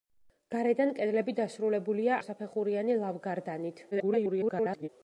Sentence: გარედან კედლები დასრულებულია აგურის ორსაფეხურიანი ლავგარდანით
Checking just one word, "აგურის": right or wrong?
wrong